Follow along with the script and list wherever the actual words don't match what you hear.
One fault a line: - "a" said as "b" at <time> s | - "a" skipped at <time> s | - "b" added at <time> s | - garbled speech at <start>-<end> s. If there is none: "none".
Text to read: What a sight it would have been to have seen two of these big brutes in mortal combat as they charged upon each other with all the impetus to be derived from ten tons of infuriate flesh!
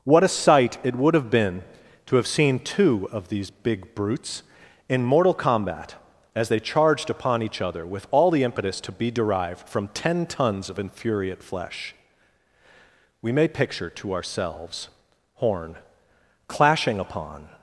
- "We may picture to ourselves horn clashing upon" added at 13.2 s